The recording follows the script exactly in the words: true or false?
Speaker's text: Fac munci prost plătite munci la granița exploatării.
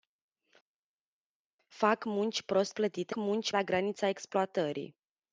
true